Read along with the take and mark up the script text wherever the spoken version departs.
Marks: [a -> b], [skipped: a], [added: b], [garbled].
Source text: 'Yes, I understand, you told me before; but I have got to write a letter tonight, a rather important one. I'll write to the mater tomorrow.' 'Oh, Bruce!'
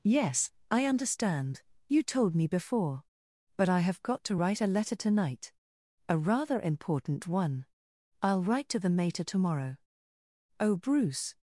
'Yes, I understand, you told me before; but I have got to write a letter tonight, a rather important one. I'll write to the mater tomorrow.' 'Oh, Bruce!'